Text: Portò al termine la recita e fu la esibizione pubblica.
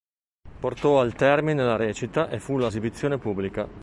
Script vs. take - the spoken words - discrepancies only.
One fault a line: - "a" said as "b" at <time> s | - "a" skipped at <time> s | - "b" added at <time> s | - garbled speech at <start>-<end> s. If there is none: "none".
none